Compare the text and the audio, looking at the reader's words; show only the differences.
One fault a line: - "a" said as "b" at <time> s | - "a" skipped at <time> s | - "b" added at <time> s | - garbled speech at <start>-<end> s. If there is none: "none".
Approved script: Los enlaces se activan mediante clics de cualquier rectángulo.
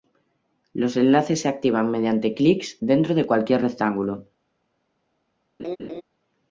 - "dentro" added at 2.8 s